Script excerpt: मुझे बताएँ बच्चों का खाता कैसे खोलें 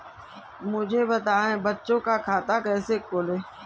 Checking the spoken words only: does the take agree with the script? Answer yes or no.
yes